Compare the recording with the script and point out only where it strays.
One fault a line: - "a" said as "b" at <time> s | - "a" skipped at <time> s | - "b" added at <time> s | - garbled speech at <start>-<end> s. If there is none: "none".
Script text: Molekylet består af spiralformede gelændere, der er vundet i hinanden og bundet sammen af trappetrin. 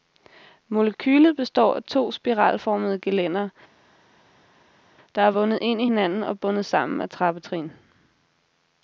- "to" added at 1.8 s
- "ind" added at 5.6 s